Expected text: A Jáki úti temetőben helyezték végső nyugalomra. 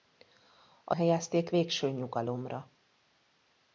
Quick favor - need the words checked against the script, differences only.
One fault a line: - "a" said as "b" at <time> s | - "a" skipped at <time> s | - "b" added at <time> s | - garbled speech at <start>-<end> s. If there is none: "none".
- "Jáki úti temetőben" skipped at 0.9 s